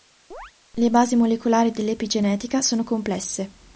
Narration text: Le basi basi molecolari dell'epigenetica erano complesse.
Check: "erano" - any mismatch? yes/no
yes